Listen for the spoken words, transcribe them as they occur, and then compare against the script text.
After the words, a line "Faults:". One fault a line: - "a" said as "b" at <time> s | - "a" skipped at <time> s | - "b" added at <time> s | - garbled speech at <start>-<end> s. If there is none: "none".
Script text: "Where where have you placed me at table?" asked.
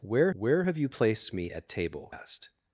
"Where where have you placed me at table?" asked.
Faults:
none